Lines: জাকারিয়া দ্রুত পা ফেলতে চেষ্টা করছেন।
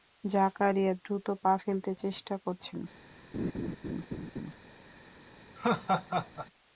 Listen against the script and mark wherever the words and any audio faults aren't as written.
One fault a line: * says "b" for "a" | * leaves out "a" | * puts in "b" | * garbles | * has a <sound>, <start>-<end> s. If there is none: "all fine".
* has a laugh, 3.3-4.6 s
* has a laugh, 5.6-6.5 s